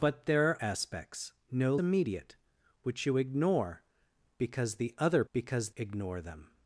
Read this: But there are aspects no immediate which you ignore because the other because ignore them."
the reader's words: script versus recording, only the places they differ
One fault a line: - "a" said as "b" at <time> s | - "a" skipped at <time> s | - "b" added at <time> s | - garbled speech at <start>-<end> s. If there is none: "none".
none